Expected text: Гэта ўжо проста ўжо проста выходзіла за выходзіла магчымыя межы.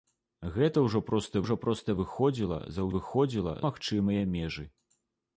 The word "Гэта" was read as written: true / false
true